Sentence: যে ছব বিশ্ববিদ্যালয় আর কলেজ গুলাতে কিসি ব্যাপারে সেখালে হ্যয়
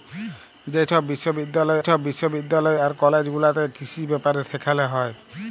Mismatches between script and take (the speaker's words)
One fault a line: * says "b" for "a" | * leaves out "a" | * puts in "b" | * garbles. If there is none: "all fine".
* puts in "ছব বিশ্ববিদ্যালয়"